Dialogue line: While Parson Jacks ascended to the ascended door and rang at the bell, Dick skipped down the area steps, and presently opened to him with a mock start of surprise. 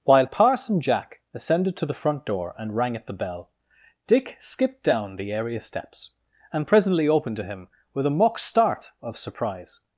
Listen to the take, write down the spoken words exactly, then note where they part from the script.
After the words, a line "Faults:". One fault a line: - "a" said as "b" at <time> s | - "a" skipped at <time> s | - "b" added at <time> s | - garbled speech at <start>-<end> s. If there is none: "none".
While Parson Jack ascended to the front door and rang at the bell, Dick skipped down the area steps, and presently opened to him with a mock start of surprise.
Faults:
- "Jacks" said as "Jack" at 0.8 s
- "ascended" said as "front" at 2.0 s